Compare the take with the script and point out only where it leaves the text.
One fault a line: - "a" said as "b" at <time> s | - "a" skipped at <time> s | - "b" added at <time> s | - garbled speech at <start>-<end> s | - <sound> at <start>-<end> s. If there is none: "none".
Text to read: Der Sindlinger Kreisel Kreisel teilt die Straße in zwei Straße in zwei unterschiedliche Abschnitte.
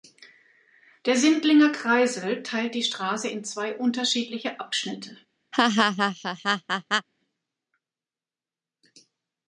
- "Kreisel" skipped at 2.4 s
- "Straße in zwei" skipped at 3.7 s
- laugh at 5.5-7.1 s